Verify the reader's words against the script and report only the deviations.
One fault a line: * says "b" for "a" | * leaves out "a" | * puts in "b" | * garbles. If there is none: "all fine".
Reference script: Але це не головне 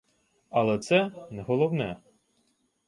all fine